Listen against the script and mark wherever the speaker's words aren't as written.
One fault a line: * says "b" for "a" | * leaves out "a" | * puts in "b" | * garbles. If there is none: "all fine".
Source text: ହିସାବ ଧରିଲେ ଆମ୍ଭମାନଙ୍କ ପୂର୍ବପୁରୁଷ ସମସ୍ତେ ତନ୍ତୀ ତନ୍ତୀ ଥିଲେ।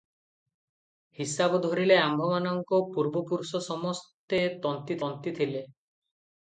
all fine